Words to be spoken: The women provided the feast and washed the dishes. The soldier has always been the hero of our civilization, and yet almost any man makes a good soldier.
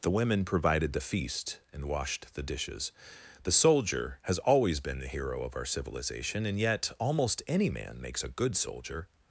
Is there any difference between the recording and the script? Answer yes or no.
no